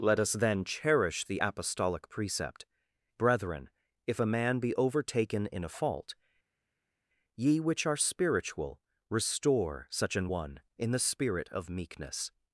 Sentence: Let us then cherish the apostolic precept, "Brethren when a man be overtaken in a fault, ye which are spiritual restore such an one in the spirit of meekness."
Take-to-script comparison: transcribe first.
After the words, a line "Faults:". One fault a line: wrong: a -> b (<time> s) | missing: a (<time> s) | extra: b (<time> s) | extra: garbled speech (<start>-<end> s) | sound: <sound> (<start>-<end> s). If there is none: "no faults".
Let us then cherish the apostolic precept, "Brethren if a man be overtaken in a fault, ye which are spiritual restore such an one in the spirit of meekness."
Faults:
wrong: when -> if (4.1 s)